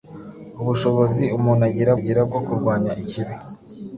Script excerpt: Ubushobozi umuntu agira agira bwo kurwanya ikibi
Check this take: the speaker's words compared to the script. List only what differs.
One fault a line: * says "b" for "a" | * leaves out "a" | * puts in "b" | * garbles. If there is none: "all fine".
all fine